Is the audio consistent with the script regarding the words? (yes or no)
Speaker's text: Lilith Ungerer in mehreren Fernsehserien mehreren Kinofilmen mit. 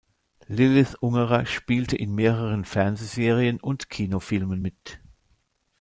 no